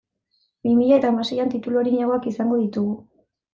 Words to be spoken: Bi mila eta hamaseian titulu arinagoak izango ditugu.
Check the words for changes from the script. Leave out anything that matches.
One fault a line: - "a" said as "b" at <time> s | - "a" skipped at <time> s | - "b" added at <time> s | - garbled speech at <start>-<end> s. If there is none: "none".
none